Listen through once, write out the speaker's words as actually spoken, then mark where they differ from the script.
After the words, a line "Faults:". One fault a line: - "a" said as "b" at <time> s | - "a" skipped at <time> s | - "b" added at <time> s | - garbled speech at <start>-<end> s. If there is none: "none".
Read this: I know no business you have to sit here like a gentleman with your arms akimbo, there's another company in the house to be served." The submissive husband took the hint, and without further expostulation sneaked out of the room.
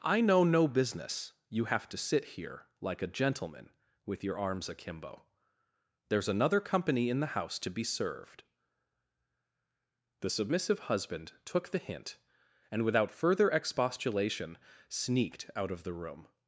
I know no business you have to sit here like a gentleman with your arms akimbo, there's another company in the house to be served." The submissive husband took the hint, and without further expostulation sneaked out of the room.
Faults:
none